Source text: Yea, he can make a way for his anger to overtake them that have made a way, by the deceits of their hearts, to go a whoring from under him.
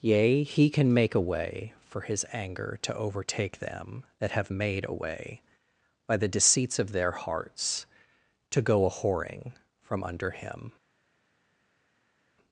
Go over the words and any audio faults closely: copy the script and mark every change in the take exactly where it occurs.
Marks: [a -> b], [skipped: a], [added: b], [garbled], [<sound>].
Yea, he can make a way for his anger to overtake them that have made a way, by the deceits of their hearts, to go a whoring from under him.